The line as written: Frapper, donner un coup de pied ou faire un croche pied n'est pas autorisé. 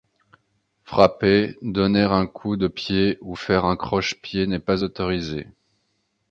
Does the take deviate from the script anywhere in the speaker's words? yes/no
no